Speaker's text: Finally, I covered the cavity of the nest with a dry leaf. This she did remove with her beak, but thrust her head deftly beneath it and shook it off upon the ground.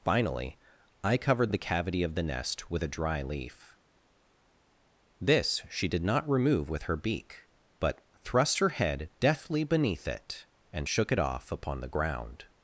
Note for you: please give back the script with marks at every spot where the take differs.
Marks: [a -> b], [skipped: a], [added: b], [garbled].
Finally, I covered the cavity of the nest with a dry leaf. This she did [added: not] remove with her beak, but thrust her head deftly beneath it and shook it off upon the ground.